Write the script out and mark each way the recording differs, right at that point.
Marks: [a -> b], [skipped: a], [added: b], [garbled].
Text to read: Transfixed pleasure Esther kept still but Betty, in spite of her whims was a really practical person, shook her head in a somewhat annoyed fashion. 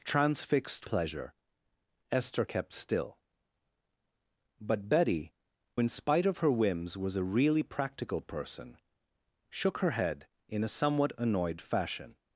Transfixed pleasure Esther kept still but Betty, in spite of her whims was a really practical person, shook her head in a somewhat annoyed fashion.